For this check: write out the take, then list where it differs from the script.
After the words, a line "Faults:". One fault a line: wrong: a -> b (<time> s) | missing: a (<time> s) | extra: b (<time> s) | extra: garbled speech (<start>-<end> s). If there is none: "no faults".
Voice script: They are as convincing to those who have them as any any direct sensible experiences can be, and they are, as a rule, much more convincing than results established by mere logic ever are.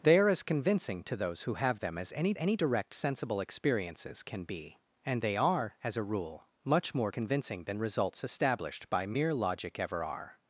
They are as convincing to those who have them as any any direct sensible experiences can be, and they are, as a rule, much more convincing than results established by mere logic ever are.
Faults:
no faults